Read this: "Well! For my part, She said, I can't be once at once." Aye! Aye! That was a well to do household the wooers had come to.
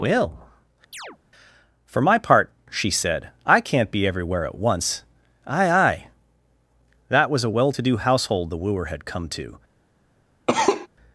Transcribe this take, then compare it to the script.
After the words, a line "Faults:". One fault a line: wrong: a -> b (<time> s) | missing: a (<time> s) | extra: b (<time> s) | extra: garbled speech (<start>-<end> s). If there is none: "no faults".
"Well! For my part, She said, I can't be everywhere at once." Aye! Aye! That was a well to do household the wooer had come to.
Faults:
wrong: once -> everywhere (4.1 s)
wrong: wooers -> wooer (8.6 s)